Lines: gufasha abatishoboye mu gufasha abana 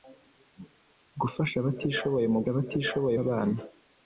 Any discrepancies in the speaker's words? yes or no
yes